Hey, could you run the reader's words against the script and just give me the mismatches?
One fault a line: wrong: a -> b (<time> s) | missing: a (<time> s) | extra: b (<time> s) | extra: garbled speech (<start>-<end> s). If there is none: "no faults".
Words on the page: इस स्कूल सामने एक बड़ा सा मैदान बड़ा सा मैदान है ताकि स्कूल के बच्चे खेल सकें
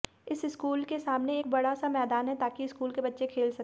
extra: के (0.8 s)
missing: बड़ा सा मैदान (2.3 s)